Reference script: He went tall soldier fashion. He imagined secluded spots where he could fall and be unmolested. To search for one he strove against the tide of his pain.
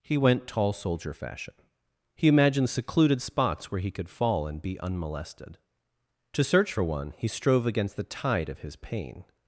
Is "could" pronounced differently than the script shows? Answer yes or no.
no